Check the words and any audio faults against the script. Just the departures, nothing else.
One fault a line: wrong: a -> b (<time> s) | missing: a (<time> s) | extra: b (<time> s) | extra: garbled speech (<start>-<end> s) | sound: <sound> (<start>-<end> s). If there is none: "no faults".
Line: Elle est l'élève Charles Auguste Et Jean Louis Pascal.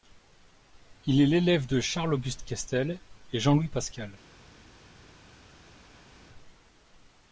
wrong: Elle -> Il (1.1 s)
extra: de (1.7 s)
extra: Questel (2.4 s)